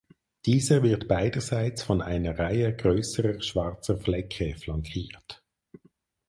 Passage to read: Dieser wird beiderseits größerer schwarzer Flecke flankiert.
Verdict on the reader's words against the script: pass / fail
fail